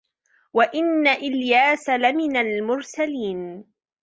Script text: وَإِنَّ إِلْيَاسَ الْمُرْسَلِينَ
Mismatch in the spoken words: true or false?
true